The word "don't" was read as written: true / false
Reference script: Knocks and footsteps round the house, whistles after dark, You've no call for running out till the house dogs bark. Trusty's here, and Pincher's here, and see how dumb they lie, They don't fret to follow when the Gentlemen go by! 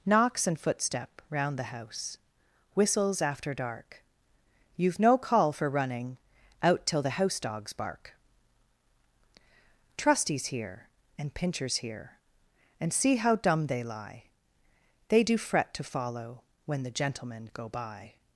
false